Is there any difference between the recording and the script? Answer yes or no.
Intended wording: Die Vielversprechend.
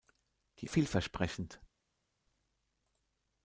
no